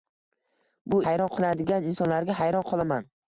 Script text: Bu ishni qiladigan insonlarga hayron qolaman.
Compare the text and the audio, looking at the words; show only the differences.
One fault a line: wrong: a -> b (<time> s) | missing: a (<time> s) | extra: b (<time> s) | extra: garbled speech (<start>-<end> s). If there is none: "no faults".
wrong: ishni -> hayron (1.1 s)